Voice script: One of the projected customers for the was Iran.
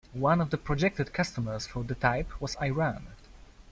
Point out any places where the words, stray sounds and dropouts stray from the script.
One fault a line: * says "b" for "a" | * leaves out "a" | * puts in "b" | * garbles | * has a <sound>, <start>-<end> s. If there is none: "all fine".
* puts in "type"